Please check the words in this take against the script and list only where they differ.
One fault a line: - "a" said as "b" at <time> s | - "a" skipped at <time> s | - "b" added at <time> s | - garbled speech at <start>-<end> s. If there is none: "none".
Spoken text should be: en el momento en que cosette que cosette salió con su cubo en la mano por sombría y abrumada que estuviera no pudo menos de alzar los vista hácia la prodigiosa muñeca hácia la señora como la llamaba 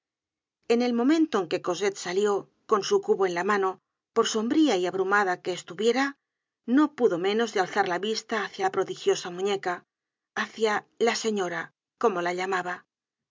- "que cosette" skipped at 1.9 s
- "los" said as "la" at 7.9 s